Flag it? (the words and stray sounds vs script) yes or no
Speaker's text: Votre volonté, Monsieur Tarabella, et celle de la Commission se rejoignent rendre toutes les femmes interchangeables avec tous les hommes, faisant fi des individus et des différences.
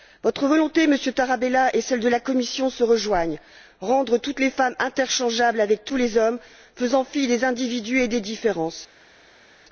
no